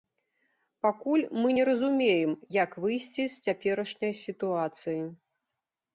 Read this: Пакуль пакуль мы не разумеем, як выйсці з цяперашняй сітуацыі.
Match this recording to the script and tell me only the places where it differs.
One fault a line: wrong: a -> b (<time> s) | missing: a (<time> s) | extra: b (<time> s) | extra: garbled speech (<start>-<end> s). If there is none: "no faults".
missing: пакуль (1.2 s)